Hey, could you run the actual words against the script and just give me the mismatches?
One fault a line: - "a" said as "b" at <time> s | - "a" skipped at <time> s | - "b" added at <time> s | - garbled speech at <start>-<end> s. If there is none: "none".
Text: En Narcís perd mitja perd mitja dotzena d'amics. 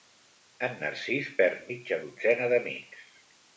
- "perd mitja" skipped at 2.0 s